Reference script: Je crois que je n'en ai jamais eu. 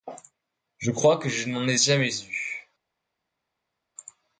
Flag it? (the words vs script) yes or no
no